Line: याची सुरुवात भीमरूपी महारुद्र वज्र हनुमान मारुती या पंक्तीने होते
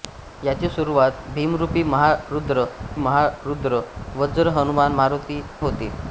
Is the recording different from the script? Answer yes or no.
yes